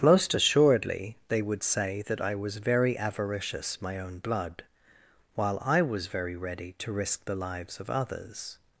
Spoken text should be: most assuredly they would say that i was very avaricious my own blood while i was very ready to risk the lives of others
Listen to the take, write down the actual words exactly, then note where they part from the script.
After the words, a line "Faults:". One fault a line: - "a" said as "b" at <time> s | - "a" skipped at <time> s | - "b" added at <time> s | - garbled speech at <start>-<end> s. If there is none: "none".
most assuredly they would say that i was very avaricious my own blood while i was very ready to risk the lives of others
Faults:
none